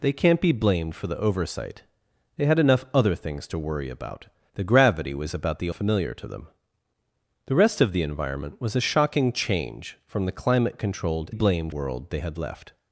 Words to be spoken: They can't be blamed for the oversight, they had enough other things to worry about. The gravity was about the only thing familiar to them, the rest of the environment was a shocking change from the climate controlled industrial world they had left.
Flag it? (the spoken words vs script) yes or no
yes